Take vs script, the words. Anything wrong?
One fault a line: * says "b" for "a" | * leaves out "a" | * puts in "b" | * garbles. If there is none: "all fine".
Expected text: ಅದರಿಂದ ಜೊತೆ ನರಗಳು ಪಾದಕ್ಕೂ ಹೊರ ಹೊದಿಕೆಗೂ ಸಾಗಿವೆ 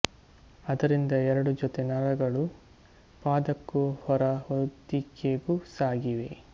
* puts in "ಎರಡು"